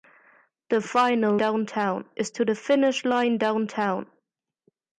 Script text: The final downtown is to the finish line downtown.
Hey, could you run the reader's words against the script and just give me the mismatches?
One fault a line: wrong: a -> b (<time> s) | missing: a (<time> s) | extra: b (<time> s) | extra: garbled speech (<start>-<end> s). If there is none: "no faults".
no faults